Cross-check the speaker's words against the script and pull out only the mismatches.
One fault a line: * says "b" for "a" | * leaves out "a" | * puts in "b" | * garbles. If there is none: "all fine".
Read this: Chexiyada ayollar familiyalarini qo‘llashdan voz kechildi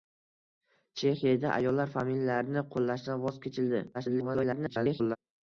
* garbles